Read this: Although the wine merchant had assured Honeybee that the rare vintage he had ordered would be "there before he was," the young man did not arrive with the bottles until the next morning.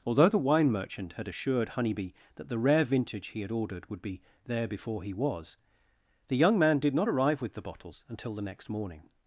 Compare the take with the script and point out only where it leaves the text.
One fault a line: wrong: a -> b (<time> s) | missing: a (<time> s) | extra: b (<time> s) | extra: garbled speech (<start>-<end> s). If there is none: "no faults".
no faults